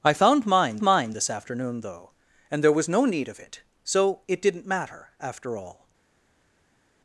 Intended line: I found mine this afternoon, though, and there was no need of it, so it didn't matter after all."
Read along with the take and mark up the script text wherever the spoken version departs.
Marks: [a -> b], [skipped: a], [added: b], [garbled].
I found mine [added: mine] this afternoon, though, and there was no need of it, so it didn't matter after all."